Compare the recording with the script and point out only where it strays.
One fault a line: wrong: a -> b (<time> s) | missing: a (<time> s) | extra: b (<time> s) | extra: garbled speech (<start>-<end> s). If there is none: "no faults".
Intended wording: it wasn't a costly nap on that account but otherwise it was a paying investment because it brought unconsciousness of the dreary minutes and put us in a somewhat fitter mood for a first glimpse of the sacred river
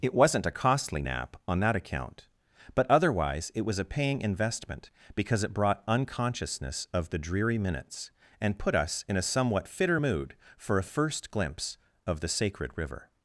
no faults